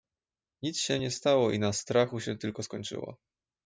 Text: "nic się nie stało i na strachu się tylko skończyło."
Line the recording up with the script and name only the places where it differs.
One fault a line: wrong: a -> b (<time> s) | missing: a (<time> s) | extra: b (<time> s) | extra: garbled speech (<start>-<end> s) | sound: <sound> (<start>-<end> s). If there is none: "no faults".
no faults